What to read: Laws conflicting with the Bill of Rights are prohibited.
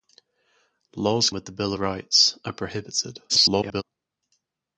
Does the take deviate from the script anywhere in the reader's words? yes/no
yes